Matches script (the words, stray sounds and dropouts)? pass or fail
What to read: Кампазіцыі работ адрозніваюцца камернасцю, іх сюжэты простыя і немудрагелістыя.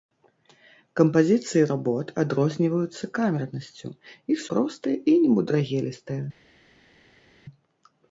fail